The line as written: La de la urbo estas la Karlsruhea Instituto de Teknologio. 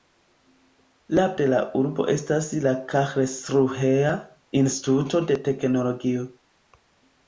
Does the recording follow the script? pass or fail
pass